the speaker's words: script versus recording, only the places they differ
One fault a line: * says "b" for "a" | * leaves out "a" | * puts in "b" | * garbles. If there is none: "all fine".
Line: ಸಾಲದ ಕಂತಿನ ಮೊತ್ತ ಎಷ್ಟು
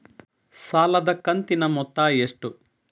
all fine